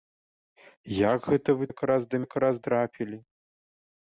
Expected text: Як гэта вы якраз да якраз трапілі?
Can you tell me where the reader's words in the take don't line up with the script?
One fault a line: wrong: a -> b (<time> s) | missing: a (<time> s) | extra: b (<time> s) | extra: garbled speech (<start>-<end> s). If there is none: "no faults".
no faults